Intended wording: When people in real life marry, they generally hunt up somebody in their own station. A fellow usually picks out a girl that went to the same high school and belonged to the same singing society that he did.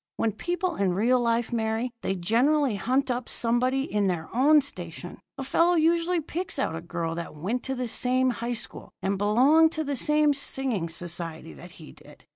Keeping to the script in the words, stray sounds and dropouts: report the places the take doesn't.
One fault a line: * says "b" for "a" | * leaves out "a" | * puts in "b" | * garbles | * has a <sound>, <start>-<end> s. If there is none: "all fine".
all fine